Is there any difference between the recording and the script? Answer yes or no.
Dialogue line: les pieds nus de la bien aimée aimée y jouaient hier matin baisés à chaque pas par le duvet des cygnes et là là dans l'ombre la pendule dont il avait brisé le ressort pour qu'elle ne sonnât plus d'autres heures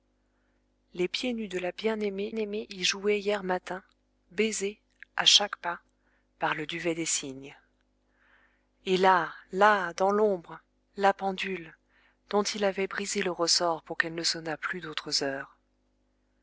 no